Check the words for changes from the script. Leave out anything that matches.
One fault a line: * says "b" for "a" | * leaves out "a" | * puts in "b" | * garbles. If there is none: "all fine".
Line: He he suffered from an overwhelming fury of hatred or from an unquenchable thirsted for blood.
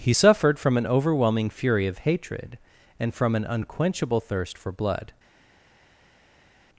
* leaves out "he"
* says "and" for "or"
* says "thirst" for "thirsted"